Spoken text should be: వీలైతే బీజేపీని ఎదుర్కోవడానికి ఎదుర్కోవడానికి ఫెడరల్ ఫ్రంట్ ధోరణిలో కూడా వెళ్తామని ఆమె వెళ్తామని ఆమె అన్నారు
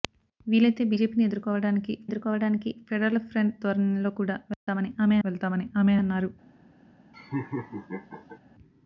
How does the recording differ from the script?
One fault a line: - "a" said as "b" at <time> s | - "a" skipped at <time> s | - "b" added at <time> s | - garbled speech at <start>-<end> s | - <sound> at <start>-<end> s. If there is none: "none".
- dropout at 4.5-4.7 s
- laugh at 7.1-8.4 s